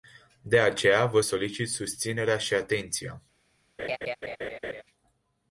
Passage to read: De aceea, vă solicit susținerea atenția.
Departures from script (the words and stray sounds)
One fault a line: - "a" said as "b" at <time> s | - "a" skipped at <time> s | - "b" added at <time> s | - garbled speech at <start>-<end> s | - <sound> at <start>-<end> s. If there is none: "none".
- "și" added at 2.4 s
- laugh at 3.8-4.8 s